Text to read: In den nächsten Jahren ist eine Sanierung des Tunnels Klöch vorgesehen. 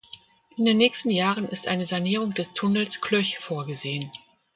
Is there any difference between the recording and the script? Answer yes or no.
no